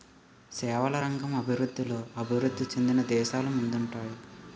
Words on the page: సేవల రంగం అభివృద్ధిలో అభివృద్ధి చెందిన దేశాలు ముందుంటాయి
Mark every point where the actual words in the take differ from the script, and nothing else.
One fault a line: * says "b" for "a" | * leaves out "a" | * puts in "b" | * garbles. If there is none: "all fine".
all fine